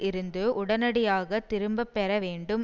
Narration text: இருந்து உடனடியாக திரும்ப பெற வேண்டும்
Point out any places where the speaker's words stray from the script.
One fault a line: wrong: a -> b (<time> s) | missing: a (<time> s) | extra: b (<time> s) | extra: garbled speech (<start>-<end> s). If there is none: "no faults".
no faults